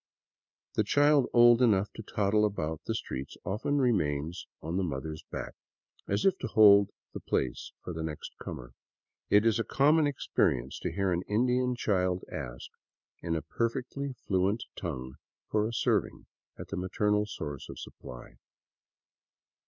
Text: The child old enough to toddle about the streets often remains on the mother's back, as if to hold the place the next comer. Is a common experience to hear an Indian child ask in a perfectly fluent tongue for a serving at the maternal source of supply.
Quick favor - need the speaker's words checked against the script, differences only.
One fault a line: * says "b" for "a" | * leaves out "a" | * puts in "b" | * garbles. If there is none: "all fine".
* puts in "for"
* puts in "It"